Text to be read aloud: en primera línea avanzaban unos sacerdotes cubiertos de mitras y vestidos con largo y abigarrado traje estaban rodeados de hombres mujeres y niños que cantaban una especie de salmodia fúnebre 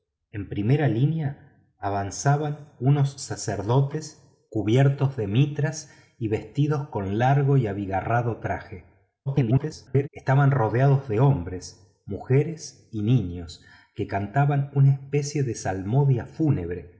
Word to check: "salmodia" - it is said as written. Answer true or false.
true